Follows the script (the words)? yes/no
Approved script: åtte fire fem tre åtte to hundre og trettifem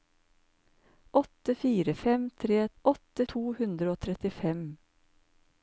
yes